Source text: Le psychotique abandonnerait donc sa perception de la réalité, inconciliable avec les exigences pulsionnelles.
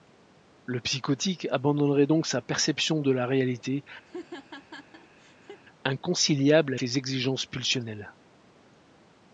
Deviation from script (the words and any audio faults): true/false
true